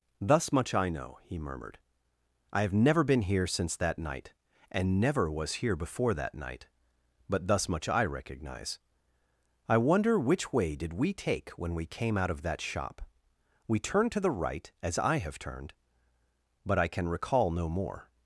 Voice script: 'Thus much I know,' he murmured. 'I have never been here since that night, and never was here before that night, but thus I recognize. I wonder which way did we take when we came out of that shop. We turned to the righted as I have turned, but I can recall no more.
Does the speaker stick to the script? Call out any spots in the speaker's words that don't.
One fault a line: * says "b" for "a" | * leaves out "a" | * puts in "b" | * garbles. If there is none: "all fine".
* puts in "much"
* says "right" for "righted"